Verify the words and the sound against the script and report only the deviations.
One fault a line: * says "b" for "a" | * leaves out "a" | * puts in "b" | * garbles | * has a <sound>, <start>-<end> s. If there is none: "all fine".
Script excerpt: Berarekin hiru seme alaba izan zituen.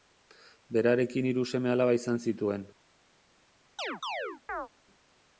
* has a chirp, 3.8-4.7 s